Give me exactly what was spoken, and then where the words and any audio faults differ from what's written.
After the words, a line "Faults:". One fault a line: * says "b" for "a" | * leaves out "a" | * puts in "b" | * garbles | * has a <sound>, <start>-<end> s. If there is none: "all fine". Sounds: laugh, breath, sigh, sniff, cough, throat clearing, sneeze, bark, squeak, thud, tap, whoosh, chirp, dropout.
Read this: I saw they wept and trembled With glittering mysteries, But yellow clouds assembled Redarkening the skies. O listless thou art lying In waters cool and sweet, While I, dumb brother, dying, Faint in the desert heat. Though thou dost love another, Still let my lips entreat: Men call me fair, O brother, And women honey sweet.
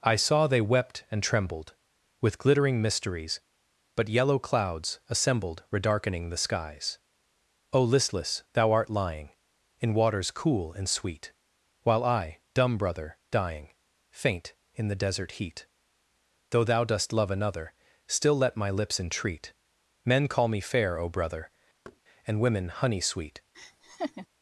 I saw they wept and trembled With glittering mysteries, But yellow clouds assembled Redarkening the skies. O listless thou art lying In waters cool and sweet, While I, dumb brother, dying, Faint in the desert heat. Though thou dost love another, Still let my lips entreat: Men call me fair, O brother, And women honey sweet.
Faults:
* has a thud, 21.8-22.0 s
* has a laugh, 23.5-24.3 s